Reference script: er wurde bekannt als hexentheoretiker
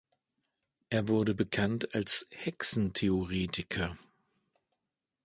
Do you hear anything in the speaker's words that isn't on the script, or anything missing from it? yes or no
no